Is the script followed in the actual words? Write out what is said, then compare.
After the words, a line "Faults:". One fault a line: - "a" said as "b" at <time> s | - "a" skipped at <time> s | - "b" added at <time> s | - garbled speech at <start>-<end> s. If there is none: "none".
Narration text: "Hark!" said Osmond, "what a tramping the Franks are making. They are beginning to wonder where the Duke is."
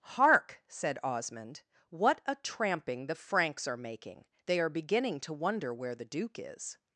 "Hark!" said Osmond, "what a tramping the Franks are making. They are beginning to wonder where the Duke is."
Faults:
none